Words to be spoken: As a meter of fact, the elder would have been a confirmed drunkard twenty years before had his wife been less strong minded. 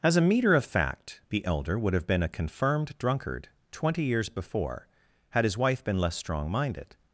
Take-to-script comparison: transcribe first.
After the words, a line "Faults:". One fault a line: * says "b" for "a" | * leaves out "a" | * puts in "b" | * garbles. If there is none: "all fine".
As a meter of fact, the elder would have been a confirmed drunkard twenty years before had his wife been less strong minded.
Faults:
all fine